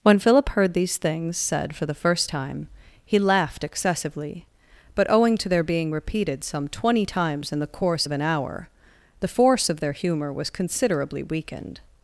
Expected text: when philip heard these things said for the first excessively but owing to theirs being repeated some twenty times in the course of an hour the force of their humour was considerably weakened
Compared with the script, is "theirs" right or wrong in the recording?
wrong